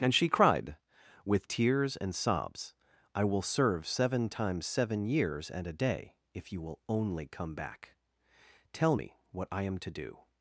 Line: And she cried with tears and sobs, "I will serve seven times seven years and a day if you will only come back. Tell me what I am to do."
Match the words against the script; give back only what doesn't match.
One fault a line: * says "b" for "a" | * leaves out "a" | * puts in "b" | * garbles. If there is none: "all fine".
all fine